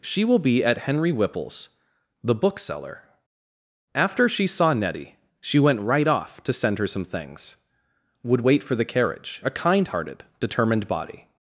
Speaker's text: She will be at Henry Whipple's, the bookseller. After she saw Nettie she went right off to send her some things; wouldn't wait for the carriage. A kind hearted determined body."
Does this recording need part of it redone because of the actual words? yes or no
yes